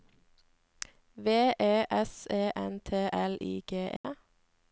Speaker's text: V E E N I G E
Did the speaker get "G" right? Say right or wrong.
right